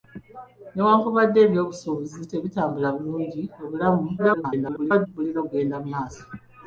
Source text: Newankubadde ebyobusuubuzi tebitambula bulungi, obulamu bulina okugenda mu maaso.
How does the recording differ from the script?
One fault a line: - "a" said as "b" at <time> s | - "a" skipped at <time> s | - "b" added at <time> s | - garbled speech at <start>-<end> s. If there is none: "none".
- garbled speech at 4.2-5.1 s